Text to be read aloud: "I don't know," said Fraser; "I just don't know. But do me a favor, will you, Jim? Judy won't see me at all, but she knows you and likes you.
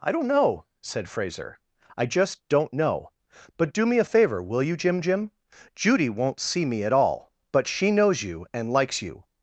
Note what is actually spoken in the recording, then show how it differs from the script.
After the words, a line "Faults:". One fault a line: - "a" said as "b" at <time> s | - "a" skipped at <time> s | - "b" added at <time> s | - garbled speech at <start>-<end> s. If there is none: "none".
"I don't know," said Fraser; "I just don't know. But do me a favor, will you, Jim Jim? Judy won't see me at all, but she knows you and likes you.
Faults:
- "Jim" added at 5.0 s